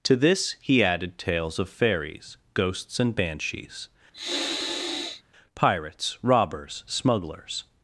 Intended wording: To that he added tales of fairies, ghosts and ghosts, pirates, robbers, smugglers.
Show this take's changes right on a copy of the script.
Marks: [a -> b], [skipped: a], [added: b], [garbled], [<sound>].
To [that -> this] he added tales of fairies, ghosts and [ghosts, -> banshees] [sniff] pirates, robbers, smugglers.